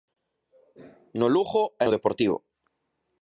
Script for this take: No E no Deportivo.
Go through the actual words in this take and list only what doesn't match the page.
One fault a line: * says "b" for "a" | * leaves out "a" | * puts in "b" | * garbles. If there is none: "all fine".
* puts in "Lugo"